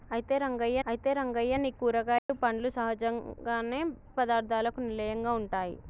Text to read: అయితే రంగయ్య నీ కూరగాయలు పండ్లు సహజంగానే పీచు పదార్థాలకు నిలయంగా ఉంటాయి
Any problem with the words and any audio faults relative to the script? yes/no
yes